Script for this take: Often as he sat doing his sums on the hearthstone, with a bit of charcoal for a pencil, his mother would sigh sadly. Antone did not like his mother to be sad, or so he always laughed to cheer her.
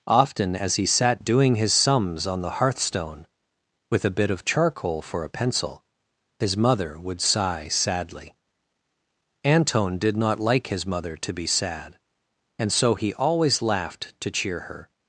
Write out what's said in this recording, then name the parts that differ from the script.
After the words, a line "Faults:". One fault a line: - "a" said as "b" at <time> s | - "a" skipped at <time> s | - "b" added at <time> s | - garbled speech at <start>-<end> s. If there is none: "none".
Often as he sat doing his sums on the hearthstone, with a bit of charcoal for a pencil, his mother would sigh sadly. Antone did not like his mother to be sad, and so he always laughed to cheer her.
Faults:
- "or" said as "and" at 12.6 s